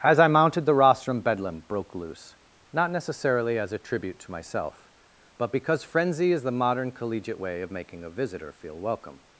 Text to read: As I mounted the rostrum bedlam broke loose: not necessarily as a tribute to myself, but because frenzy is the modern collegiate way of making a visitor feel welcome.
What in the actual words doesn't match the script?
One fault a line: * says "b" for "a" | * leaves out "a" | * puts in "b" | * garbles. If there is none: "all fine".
all fine